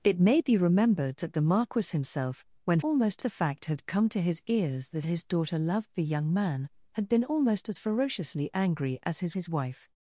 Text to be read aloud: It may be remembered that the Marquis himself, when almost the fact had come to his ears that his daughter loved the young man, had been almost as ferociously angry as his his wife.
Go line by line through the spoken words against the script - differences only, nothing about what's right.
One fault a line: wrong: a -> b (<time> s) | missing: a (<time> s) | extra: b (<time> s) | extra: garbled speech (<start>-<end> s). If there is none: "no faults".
no faults